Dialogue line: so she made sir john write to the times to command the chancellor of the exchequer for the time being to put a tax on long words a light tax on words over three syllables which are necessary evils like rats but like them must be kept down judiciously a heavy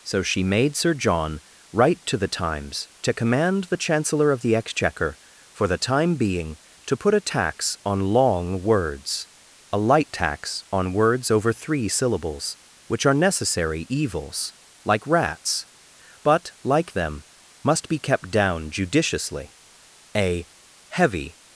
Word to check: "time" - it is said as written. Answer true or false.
true